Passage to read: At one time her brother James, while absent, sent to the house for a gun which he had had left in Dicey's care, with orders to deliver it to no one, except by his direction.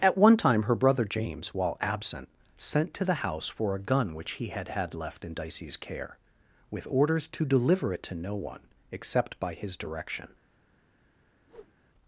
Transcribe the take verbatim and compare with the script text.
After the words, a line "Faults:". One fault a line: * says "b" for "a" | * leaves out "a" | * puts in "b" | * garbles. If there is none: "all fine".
At one time her brother James, while absent, sent to the house for a gun which he had had left in Dicey's care, with orders to deliver it to no one, except by his direction.
Faults:
all fine